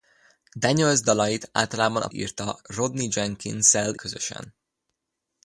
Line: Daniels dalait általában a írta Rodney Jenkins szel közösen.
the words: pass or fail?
pass